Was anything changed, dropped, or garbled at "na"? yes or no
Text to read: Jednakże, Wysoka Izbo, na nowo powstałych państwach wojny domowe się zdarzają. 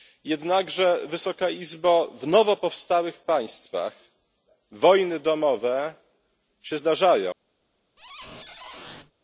yes